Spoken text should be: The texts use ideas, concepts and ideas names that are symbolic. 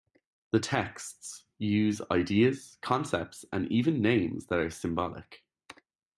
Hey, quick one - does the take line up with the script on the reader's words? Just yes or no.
no